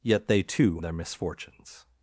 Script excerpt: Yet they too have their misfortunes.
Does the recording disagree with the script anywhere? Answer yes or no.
yes